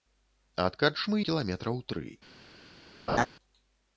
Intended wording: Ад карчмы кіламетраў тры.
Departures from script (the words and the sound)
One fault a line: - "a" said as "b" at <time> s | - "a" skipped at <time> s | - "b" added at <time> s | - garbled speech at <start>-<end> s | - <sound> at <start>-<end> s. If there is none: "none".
- laugh at 3.1-3.3 s